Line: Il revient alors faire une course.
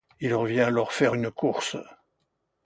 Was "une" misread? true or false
false